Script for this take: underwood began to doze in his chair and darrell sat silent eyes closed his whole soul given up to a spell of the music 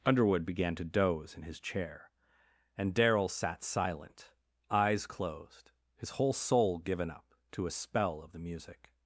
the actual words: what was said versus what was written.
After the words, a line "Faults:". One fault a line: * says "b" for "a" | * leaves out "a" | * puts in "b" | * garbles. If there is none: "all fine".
underwood began to doze in his chair and darrell sat silent eyes closed his whole soul given up to a spell of the music
Faults:
all fine